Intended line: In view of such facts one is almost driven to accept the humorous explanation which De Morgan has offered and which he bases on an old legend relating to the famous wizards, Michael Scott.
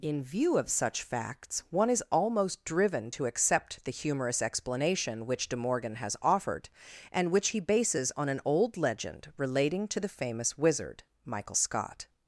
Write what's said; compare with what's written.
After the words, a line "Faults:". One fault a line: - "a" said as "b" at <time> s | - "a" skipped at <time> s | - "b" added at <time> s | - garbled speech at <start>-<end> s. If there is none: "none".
In view of such facts one is almost driven to accept the humorous explanation which De Morgan has offered and which he bases on an old legend relating to the famous wizard, Michael Scott.
Faults:
- "wizards" said as "wizard" at 10.6 s